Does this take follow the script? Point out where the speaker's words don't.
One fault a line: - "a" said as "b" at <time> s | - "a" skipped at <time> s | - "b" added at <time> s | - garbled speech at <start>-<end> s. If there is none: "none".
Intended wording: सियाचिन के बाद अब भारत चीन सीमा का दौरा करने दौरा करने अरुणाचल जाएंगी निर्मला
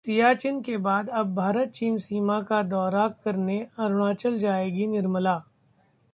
- "दौरा करने" skipped at 3.6 s